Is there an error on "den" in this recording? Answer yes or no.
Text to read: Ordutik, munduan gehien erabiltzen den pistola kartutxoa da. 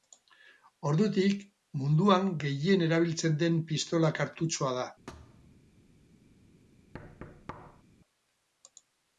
no